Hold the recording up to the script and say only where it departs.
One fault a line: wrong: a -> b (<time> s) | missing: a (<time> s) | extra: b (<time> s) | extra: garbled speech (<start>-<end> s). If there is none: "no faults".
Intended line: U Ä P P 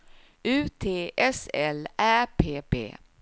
extra: T S L (0.8 s)